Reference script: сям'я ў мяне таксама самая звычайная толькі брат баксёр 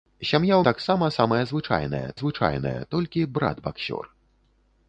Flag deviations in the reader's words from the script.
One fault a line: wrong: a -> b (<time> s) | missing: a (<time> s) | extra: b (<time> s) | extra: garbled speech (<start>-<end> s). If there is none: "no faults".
missing: мяне (0.6 s)
extra: звычайная (2.2 s)